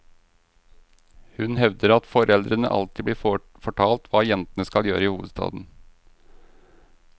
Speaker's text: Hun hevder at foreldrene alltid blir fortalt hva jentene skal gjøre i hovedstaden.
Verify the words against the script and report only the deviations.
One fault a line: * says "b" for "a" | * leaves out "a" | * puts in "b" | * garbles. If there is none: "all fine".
all fine